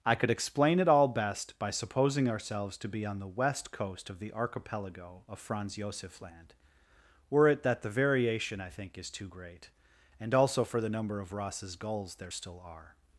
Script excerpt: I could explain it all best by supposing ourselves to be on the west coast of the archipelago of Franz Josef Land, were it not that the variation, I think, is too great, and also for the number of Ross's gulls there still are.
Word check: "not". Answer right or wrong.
wrong